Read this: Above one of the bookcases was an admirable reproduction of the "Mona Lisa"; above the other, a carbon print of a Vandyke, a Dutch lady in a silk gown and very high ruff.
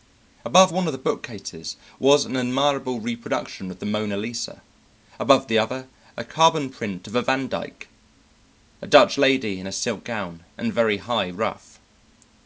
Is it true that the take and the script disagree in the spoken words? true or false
false